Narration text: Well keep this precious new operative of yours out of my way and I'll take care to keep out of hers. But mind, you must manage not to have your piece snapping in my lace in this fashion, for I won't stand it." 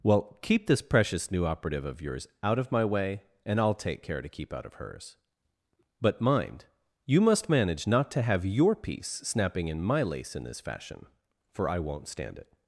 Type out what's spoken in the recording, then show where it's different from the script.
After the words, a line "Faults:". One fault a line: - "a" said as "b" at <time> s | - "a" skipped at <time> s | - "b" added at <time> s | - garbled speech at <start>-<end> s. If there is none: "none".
Well keep this precious new operative of yours out of my way and I'll take care to keep out of hers. But mind, you must manage not to have your piece snapping in my lace in this fashion, for I won't stand it."
Faults:
none